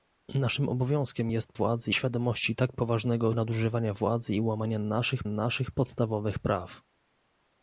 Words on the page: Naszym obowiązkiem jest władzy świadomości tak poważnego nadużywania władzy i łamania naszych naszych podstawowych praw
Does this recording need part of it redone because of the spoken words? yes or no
no